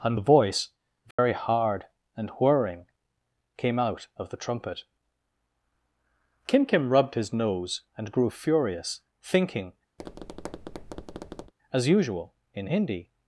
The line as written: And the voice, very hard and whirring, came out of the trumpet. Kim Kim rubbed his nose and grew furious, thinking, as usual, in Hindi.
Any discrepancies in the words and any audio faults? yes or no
yes